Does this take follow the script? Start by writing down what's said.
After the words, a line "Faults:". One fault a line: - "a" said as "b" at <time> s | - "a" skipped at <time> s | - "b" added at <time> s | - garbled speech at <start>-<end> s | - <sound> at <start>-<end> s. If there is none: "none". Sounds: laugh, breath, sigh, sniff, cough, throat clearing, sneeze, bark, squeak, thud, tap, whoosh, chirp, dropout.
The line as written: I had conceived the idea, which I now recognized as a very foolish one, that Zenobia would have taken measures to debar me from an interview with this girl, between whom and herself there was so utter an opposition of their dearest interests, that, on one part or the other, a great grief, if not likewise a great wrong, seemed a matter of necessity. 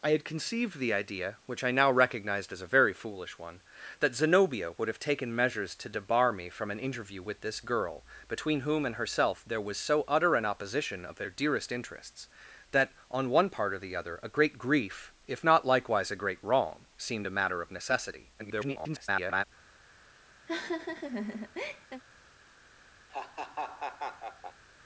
I had conceived the idea, which I now recognized as a very foolish one, that Zenobia would have taken measures to debar me from an interview with this girl, between whom and herself there was so utter an opposition of their dearest interests, that, on one part or the other, a great grief, if not likewise a great wrong, seemed a matter of necessity. [garbled]
Faults:
- garbled speech at 18.4-19.4 s
- laugh at 20.5-22.0 s
- laugh at 23.1-24.6 s